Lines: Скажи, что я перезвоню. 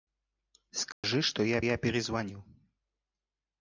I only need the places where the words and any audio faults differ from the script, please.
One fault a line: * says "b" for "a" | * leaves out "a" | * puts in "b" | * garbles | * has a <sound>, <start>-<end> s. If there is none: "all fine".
* has a dropout, 0.9-1.0 s
* puts in "я"